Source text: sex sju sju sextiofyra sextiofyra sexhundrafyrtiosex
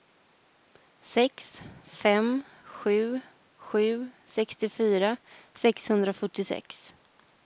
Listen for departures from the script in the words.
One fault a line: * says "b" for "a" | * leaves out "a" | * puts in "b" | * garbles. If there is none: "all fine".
* puts in "fem"
* leaves out "sextiofyra"